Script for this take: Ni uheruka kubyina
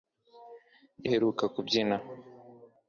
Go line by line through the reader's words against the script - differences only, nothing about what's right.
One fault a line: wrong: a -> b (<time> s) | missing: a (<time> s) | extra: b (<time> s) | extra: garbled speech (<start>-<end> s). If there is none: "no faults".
no faults